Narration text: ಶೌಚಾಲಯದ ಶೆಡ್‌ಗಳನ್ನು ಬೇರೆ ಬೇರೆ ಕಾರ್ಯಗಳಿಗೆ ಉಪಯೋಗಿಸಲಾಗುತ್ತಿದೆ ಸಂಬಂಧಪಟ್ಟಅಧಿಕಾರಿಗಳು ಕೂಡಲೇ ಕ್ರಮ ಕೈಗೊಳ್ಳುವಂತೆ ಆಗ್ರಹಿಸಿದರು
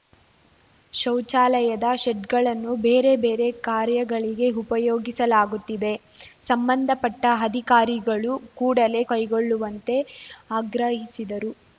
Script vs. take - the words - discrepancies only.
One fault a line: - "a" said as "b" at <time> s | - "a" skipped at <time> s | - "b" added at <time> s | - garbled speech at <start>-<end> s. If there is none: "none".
- "ಕ್ರಮ" skipped at 9.0 s